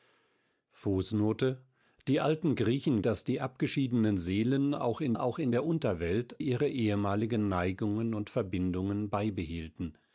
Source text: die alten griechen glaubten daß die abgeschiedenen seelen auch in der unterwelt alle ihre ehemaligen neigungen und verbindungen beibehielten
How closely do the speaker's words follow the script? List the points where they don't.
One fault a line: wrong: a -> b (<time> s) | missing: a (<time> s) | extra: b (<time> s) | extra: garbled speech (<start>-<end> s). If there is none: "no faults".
missing: glaubten (3.0 s)
extra: auch in (5.1 s)
missing: alle (6.4 s)